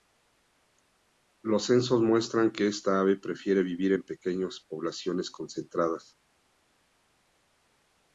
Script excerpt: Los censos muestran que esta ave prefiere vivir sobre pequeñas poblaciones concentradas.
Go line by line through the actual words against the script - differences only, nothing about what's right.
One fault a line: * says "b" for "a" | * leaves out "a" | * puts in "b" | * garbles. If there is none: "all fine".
* says "en" for "sobre"